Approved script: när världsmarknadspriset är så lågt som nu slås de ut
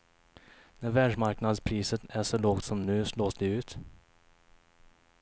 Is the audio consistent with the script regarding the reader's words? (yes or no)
yes